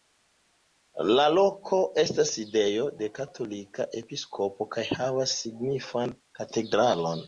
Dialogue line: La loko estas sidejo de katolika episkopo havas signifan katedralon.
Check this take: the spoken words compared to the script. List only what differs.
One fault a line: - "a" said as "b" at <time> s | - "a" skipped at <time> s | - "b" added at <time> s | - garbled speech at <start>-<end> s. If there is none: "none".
- "kaj" added at 4.8 s